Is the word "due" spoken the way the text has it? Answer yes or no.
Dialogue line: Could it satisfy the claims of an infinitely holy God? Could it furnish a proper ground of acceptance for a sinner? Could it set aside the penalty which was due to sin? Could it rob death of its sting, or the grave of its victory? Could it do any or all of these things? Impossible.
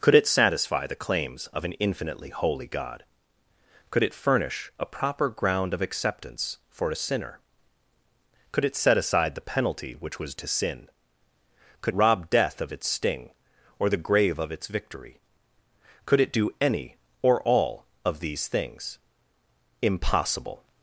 no